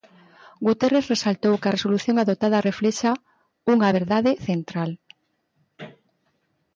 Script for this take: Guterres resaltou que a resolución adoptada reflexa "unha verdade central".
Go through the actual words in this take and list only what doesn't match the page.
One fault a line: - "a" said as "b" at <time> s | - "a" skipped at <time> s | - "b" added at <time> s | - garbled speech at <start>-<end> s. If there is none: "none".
none